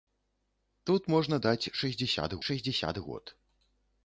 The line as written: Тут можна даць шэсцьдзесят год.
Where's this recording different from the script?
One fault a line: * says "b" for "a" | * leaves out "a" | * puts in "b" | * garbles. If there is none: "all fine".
* puts in "шэсцьдзесят"